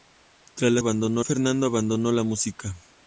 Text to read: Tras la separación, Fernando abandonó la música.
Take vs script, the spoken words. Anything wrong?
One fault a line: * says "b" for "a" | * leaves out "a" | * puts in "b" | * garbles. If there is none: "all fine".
* says "abandonó" for "separación"